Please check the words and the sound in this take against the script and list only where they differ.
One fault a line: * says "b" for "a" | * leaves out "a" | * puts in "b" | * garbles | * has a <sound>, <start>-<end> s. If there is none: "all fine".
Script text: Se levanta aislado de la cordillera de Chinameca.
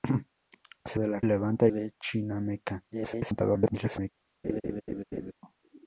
* leaves out "levanta aislado"
* says "levanta" for "cordillera"
* garbles
* has a laugh, 4.4-5.3 s